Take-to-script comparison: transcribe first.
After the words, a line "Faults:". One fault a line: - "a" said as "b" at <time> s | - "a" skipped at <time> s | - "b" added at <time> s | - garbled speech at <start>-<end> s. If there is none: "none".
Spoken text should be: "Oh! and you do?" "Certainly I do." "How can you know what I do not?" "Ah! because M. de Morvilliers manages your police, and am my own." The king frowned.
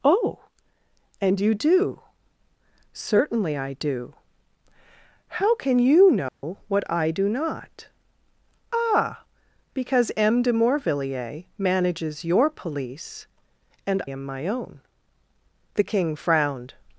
"Oh! and you do?" "Certainly I do." "How can you know what I do not?" "Ah! because M. de Morvilliers manages your police, and am my own." The king frowned.
Faults:
none